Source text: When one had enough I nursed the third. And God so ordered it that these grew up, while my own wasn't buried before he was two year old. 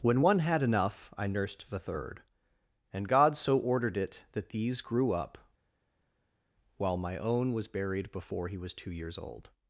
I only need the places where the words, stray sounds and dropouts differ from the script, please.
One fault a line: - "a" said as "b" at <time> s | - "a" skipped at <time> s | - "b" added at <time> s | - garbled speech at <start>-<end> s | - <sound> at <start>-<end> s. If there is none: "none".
- "wasn't" said as "was" at 7.5 s
- "year" said as "years" at 8.9 s